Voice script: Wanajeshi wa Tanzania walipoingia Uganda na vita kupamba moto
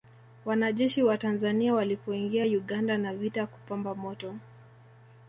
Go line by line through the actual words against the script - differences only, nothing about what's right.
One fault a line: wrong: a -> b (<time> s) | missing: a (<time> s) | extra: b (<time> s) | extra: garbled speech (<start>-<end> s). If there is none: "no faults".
no faults